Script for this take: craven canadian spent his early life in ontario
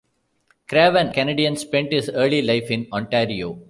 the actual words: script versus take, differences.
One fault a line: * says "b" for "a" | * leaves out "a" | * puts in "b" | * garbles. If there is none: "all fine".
all fine